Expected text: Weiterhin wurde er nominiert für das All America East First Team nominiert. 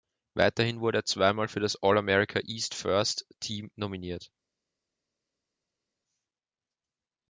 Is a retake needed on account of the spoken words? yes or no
yes